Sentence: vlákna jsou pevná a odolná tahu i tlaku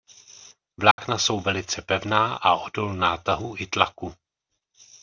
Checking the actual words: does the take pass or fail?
fail